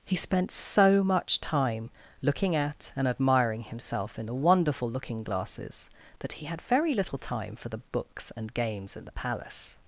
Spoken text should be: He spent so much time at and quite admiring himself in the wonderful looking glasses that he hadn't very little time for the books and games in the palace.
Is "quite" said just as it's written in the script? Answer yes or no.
no